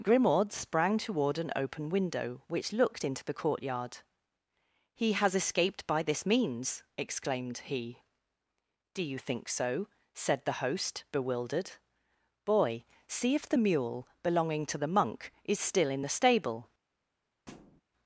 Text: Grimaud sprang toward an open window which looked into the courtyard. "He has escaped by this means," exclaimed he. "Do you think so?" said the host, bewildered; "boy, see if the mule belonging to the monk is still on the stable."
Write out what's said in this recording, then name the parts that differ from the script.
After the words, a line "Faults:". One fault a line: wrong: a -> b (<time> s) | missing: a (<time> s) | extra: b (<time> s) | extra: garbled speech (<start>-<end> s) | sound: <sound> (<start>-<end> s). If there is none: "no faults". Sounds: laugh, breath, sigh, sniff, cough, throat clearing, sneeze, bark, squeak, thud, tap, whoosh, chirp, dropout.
Grimaud sprang toward an open window which looked into the courtyard. "He has escaped by this means," exclaimed he. "Do you think so?" said the host, bewildered; "boy, see if the mule belonging to the monk is still in the stable."
Faults:
wrong: on -> in (15.9 s)
sound: thud (17.5-17.8 s)